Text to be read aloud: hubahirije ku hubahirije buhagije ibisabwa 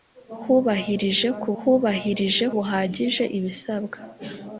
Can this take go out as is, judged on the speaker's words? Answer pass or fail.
pass